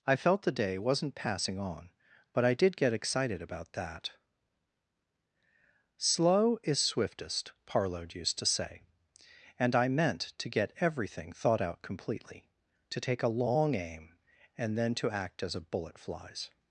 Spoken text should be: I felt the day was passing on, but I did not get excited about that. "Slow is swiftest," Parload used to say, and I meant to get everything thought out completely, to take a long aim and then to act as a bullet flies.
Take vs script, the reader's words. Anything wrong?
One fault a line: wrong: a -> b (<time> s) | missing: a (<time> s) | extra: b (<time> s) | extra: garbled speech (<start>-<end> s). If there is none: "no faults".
wrong: was -> wasn't (0.8 s)
missing: not (2.8 s)